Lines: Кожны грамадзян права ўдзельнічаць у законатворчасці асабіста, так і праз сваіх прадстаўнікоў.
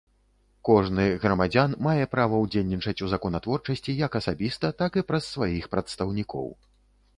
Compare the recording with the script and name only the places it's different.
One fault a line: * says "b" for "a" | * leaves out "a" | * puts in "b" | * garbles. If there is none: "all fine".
* puts in "мае"
* puts in "як"